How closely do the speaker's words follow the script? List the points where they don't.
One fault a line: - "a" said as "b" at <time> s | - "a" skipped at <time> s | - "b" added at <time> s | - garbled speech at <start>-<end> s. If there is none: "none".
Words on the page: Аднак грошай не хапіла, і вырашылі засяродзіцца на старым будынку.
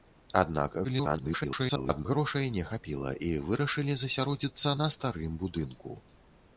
- garbled speech at 0.8-2.1 s